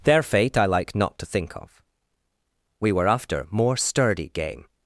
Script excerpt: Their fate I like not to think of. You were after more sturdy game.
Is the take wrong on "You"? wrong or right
wrong